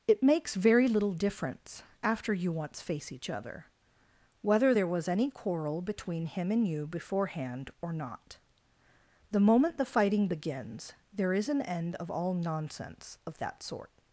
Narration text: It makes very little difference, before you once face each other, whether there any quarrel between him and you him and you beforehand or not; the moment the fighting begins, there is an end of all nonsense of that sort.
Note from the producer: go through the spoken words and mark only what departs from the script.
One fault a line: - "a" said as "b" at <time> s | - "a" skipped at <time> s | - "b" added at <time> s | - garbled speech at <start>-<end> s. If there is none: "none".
- "before" said as "after" at 2.0 s
- "was" added at 4.9 s
- "him and you" skipped at 6.9 s